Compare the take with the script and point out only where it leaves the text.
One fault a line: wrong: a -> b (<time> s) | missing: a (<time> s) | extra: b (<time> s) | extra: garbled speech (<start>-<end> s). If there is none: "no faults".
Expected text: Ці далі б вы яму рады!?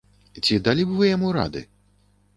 no faults